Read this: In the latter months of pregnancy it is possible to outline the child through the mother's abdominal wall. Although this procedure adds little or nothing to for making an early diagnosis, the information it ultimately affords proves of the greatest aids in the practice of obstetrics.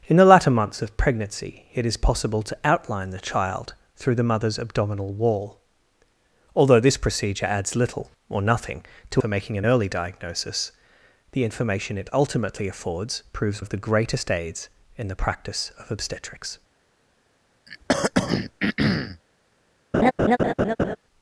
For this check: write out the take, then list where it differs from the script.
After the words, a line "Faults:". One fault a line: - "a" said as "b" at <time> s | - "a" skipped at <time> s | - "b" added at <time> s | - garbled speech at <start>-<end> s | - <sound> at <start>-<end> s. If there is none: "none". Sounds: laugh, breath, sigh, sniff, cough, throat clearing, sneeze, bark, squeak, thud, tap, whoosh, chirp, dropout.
In the latter months of pregnancy it is possible to outline the child through the mother's abdominal wall. Although this procedure adds little or nothing to for making an early diagnosis, the information it ultimately affords proves of the greatest aids in the practice of obstetrics.
Faults:
- throat clearing at 17.7-19.2 s
- laugh at 19.9-21.0 s